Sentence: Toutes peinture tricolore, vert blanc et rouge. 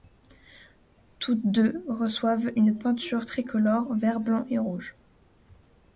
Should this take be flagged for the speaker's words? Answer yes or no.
yes